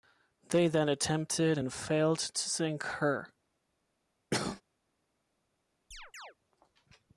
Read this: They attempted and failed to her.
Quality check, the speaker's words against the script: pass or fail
fail